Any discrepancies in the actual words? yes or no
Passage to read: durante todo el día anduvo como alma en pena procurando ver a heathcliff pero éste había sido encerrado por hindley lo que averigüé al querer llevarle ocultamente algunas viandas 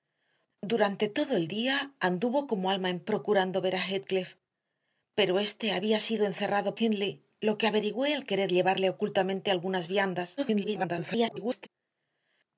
yes